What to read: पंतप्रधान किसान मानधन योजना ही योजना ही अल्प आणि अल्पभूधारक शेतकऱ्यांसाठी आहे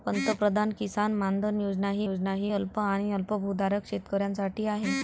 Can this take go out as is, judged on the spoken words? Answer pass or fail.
pass